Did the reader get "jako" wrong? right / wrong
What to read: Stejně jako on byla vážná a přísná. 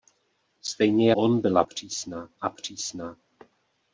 wrong